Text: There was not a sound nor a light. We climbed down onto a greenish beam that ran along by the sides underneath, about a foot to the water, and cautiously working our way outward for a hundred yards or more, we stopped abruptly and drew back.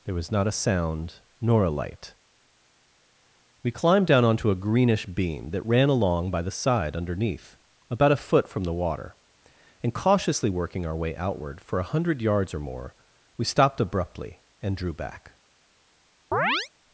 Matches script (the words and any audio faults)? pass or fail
fail